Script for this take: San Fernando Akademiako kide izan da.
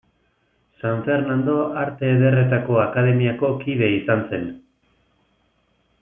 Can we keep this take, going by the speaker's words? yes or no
no